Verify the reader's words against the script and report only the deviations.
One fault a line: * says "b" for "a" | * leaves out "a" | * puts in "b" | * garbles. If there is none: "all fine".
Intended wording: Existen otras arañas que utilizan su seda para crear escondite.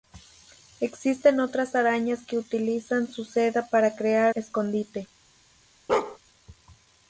all fine